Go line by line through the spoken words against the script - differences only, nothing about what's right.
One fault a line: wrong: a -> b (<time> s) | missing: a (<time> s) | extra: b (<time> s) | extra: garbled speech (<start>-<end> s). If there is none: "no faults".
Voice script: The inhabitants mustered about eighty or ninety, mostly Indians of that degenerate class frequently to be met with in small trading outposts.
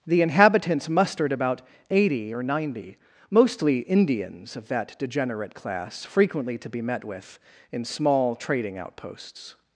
no faults